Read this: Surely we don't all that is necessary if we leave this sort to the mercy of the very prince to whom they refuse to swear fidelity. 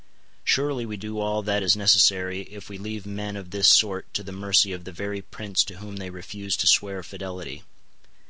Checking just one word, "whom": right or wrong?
right